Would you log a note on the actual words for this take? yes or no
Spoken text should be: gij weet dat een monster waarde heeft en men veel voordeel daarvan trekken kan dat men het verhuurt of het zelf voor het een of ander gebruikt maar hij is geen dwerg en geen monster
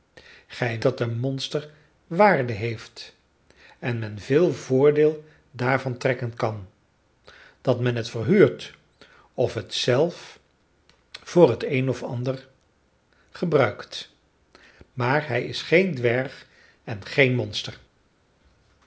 yes